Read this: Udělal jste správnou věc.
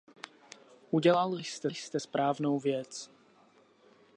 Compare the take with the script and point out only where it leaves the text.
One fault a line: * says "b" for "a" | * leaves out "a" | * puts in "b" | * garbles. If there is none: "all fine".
* puts in "jste"